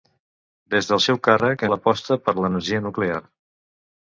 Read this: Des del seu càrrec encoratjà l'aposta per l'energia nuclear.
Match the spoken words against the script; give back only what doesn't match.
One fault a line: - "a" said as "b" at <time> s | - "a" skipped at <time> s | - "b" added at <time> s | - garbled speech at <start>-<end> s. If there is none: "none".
- "encoratjà" skipped at 1.6 s